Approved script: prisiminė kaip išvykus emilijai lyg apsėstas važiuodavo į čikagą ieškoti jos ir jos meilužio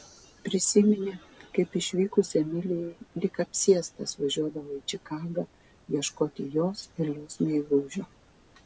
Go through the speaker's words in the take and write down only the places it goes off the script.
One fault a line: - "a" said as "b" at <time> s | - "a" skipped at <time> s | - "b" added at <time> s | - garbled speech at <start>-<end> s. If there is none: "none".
none